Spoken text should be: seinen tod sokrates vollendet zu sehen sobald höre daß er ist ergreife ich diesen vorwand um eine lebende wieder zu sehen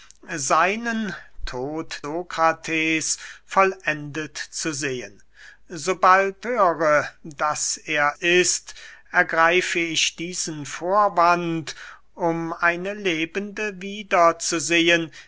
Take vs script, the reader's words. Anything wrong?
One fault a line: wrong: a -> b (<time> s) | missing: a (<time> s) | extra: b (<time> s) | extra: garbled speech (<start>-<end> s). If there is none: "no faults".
no faults